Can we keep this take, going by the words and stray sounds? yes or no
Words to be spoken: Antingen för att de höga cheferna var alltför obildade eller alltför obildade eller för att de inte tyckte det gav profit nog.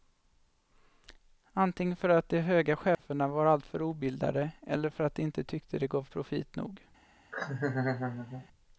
no